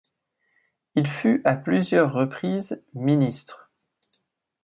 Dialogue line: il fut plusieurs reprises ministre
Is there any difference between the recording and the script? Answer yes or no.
yes